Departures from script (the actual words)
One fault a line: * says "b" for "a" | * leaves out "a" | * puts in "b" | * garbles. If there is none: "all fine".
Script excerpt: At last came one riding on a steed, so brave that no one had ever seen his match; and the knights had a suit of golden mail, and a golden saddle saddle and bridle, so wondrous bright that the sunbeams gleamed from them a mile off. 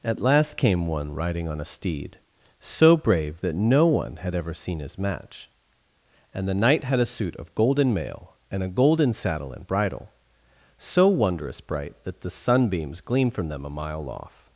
* says "knight" for "knights"
* leaves out "saddle"